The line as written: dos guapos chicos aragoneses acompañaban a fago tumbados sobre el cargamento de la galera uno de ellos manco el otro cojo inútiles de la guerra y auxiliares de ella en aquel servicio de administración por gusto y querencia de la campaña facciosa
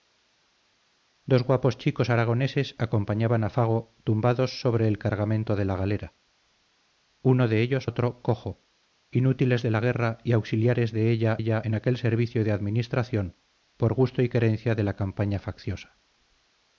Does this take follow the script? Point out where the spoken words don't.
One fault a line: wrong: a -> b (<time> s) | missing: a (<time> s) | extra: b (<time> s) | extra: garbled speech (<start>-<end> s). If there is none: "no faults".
missing: manco el (7.9 s)
extra: ella (11.4 s)